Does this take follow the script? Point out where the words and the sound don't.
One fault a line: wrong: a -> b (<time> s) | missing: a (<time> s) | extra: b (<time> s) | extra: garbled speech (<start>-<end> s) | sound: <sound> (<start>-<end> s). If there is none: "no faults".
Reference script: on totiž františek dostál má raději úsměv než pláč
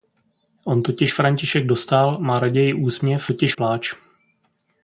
wrong: než -> totiž (3.2 s)